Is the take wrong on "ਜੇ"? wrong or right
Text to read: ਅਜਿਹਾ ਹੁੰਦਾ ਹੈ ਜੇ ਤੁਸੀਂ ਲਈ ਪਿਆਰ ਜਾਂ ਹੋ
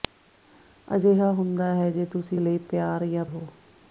right